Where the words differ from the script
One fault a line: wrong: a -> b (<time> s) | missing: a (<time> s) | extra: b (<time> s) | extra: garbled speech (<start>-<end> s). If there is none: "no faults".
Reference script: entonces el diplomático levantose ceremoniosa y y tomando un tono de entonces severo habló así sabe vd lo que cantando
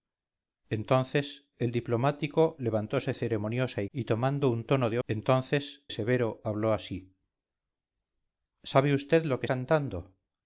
no faults